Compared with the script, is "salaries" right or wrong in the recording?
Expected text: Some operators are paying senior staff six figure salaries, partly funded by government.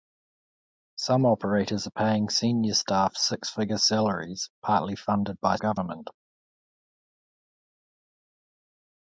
right